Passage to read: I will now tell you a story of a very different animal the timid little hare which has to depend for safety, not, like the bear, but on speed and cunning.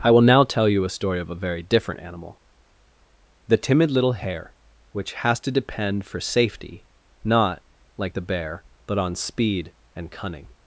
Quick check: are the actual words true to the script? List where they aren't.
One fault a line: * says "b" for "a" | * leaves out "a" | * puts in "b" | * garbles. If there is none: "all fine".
all fine